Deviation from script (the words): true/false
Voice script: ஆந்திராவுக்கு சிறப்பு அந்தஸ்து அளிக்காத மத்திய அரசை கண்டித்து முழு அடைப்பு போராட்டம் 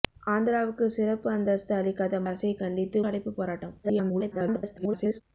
true